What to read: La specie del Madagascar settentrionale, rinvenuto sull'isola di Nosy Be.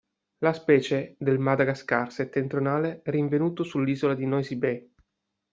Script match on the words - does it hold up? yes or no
yes